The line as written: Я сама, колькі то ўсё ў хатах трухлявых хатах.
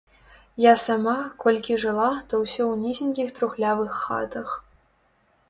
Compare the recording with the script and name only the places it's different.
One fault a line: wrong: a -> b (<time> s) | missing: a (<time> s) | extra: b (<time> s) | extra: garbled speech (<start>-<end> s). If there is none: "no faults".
extra: жыла (1.8 s)
wrong: хатах -> нізенькіх (2.9 s)